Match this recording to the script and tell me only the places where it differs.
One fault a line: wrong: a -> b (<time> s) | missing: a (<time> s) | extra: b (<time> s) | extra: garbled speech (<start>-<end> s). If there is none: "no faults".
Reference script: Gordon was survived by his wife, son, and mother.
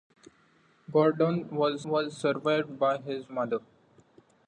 extra: was (1.9 s)
missing: wife son and (3.3 s)